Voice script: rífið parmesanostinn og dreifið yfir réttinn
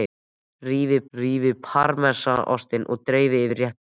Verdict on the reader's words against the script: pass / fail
fail